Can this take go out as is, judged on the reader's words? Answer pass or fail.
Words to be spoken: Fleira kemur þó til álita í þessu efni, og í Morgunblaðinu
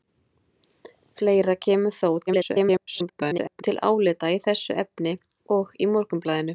fail